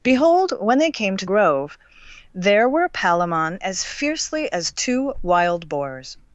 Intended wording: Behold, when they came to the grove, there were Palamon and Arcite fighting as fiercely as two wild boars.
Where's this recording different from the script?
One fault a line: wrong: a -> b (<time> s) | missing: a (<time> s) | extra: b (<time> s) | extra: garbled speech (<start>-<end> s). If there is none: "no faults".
missing: the (1.3 s)
missing: and Arcite fighting (3.6 s)